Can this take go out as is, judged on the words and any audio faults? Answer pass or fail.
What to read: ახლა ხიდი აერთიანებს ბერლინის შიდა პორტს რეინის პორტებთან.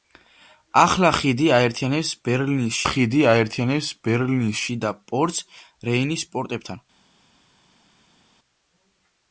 fail